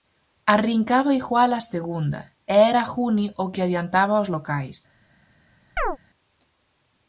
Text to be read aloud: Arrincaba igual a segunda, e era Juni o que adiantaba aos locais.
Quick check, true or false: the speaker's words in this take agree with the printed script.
true